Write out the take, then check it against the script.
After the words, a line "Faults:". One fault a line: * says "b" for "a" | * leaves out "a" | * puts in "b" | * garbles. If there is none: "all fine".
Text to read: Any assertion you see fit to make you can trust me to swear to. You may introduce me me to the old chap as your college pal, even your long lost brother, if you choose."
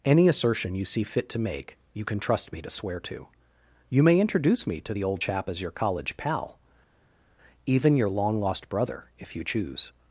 Any assertion you see fit to make you can trust me to swear to. You may introduce me to the old chap as your college pal, even your long lost brother, if you choose."
Faults:
* leaves out "me"